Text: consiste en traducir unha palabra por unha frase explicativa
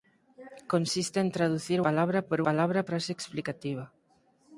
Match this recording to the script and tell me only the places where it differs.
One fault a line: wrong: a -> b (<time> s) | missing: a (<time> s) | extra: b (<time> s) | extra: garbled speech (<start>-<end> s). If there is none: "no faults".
missing: unha (1.8 s)
wrong: unha -> palabra (2.5 s)